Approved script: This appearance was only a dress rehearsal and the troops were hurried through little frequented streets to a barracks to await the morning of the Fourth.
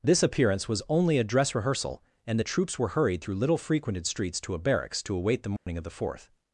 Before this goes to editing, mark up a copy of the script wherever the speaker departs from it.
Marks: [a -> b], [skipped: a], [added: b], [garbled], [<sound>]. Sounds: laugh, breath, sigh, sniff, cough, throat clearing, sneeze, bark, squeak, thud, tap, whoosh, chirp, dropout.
This appearance was only a dress rehearsal and the troops were hurried through little frequented streets to a barracks to await the morning [dropout] of the Fourth.